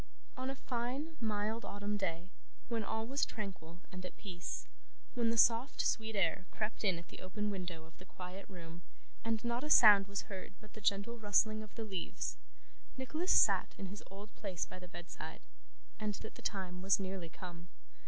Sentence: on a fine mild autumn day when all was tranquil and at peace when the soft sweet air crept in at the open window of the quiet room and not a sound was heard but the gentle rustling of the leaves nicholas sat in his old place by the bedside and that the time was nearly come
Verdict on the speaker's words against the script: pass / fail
pass